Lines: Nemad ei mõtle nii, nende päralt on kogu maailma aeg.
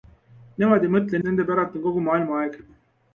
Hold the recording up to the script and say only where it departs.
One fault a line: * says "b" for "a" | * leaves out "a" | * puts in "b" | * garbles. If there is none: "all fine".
* leaves out "nii"